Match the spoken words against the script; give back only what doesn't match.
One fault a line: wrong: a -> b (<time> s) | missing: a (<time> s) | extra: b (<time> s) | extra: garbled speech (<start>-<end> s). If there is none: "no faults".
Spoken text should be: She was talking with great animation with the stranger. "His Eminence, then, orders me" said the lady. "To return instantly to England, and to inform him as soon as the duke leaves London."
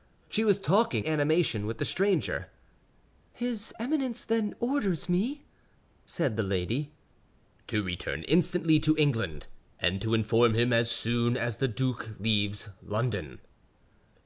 missing: with great (1.1 s)